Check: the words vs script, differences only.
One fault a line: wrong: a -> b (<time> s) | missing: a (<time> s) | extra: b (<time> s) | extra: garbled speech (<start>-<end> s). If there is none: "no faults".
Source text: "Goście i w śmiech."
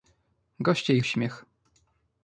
no faults